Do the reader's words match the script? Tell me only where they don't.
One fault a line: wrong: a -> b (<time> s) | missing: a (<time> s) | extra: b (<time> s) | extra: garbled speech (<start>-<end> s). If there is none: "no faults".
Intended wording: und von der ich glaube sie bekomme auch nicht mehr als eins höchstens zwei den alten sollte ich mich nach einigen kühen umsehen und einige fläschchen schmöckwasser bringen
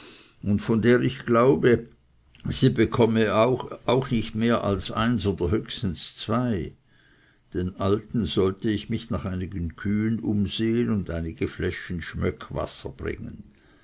extra: oder (5.3 s)